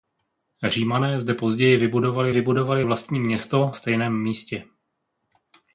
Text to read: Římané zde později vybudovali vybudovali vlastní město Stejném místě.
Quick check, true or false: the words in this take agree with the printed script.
true